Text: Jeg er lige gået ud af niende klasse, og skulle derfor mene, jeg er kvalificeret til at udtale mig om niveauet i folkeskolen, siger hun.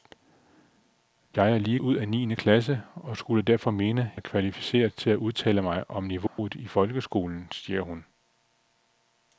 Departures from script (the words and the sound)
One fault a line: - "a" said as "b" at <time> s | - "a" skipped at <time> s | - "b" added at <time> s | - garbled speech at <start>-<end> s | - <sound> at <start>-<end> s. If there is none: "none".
- "gået" skipped at 1.8 s
- "jeg" skipped at 4.1 s
- dropout at 6.3-6.4 s